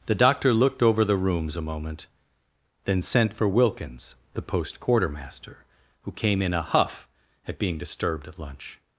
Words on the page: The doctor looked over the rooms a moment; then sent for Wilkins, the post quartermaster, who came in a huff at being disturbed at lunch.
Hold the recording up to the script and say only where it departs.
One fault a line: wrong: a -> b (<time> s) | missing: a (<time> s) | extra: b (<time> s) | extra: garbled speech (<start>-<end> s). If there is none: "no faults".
no faults